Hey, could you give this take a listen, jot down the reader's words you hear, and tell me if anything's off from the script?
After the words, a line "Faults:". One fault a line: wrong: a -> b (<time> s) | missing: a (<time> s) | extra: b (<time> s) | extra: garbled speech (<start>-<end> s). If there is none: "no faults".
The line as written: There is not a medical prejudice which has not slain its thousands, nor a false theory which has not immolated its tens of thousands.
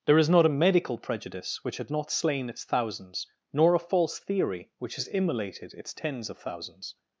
There is not a medical prejudice which had not slain its thousands, nor a false theory which has immolated its tens of thousands.
Faults:
wrong: has -> had (1.8 s)
missing: not (5.1 s)